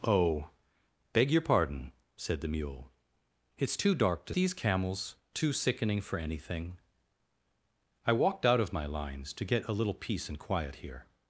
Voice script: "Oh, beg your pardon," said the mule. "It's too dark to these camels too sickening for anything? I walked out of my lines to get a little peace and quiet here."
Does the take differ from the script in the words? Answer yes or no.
no